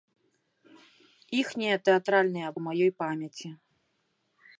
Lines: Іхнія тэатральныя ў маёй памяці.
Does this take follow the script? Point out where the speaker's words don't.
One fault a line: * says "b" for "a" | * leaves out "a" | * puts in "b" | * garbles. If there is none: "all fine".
all fine